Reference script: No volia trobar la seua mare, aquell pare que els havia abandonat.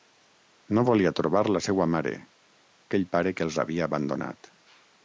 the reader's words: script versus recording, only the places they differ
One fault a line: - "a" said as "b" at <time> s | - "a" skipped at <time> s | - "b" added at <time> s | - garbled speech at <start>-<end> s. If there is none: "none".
none